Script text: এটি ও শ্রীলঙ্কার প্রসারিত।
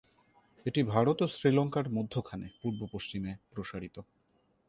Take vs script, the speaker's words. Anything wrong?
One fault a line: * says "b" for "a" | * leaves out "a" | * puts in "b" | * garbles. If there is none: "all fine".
* puts in "ভারত"
* puts in "মধ্যখানে পূর্ব পশ্চিমে"